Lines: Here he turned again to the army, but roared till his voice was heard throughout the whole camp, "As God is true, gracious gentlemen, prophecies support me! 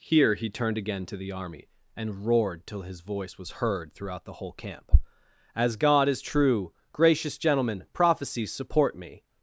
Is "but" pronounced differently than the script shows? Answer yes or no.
yes